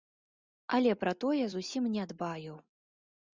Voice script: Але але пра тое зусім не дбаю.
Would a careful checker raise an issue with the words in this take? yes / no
yes